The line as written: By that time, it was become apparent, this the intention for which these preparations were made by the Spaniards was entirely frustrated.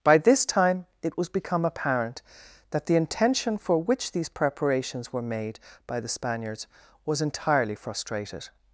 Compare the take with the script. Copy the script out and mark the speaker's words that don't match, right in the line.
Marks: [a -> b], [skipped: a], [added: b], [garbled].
By [that -> this] time, it was become apparent, [this -> that] the intention for which these preparations were made by the Spaniards was entirely frustrated.